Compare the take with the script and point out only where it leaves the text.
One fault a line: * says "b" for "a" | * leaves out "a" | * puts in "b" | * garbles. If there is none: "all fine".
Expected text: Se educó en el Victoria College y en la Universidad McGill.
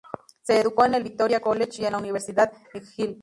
all fine